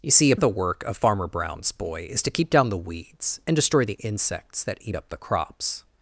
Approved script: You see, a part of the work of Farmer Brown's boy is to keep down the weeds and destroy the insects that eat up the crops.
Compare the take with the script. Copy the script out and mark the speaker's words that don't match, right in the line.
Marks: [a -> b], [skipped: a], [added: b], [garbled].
You see, a [skipped: part] of the work of Farmer Brown's boy is to keep down the weeds and destroy the insects that eat up the crops.